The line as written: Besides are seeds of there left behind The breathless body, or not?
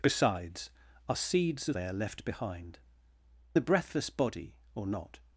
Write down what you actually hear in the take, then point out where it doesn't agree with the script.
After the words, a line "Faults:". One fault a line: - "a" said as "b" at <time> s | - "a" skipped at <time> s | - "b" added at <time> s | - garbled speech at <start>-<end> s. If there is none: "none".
Besides are seeds of there left behind The breathless body, or not?
Faults:
none